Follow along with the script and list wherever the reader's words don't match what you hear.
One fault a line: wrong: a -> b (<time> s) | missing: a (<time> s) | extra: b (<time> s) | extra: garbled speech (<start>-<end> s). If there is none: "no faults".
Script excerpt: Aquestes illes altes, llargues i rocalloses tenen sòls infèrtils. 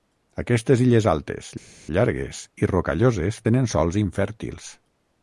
no faults